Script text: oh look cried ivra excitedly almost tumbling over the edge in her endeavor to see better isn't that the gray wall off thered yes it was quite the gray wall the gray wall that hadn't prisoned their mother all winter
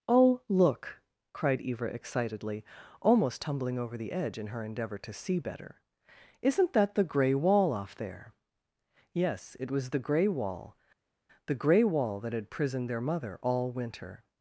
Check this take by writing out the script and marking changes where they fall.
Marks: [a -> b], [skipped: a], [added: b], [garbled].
oh look cried ivra excitedly almost tumbling over the edge in her endeavor to see better isn't that the gray wall off [thered -> there] yes it was [skipped: quite] the gray wall the gray wall that [hadn't -> had] prisoned their mother all winter